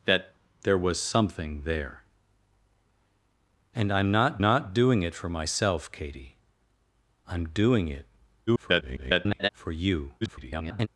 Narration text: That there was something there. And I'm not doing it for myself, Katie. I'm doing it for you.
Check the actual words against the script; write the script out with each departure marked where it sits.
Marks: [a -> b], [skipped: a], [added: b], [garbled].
That there was something there. And I'm not [added: not] doing it for myself, Katie. I'm doing it [garbled] for you. [garbled]